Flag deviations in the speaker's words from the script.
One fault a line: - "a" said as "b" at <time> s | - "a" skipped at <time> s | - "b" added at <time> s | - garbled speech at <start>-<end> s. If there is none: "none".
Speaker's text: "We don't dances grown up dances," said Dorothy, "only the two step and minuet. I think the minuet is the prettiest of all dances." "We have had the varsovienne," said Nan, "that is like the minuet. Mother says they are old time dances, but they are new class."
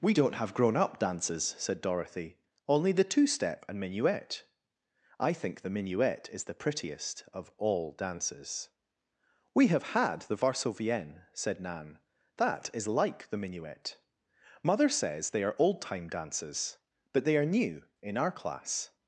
- "dances" said as "have" at 0.4 s
- "in our" added at 18.0 s